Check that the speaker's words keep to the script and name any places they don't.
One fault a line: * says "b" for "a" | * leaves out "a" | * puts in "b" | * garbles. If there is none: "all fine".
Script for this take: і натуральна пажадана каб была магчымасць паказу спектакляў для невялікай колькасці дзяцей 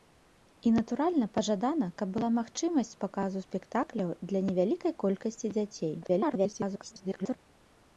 * garbles